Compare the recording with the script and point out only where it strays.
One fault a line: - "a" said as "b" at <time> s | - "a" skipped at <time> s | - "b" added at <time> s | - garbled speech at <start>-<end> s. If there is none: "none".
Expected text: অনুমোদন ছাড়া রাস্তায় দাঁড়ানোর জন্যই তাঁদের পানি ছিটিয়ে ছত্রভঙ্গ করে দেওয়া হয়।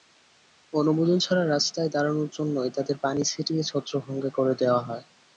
none